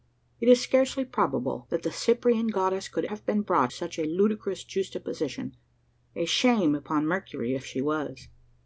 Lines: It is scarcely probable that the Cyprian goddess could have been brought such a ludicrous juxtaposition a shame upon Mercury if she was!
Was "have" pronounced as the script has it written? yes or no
yes